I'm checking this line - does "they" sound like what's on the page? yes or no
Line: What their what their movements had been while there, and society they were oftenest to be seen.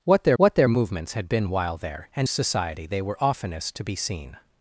yes